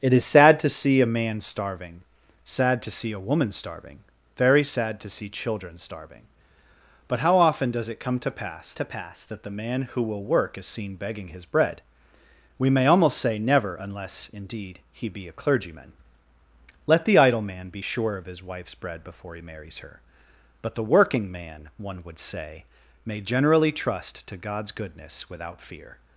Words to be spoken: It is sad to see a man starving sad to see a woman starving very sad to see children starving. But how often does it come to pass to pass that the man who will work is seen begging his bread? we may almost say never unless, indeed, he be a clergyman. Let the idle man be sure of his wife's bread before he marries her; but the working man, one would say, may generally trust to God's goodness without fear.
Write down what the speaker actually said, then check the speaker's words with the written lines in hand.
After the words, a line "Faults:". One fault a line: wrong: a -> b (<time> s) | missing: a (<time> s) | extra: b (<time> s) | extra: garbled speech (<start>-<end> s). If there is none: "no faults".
It is sad to see a man starving sad to see a woman starving very sad to see children starving. But how often does it come to pass to pass that the man who will work is seen begging his bread? we may almost say never unless, indeed, he be a clergyman. Let the idle man be sure of his wife's bread before he marries her; but the working man, one would say, may generally trust to God's goodness without fear.
Faults:
no faults